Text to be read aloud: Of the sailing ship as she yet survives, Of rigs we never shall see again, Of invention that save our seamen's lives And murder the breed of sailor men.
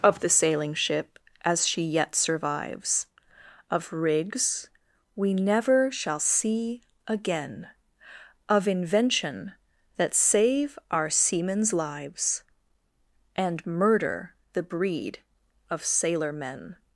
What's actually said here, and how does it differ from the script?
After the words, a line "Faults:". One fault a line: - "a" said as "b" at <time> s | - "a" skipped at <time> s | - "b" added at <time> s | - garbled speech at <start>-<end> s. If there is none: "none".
Of the sailing ship as she yet survives, Of rigs we never shall see again, Of invention that save our seamen's lives And murder the breed of sailor men.
Faults:
none